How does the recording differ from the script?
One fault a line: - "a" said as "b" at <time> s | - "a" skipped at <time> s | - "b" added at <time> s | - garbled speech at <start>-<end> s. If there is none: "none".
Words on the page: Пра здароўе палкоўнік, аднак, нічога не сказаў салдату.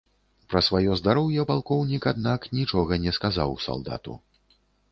- "сваё" added at 0.7 s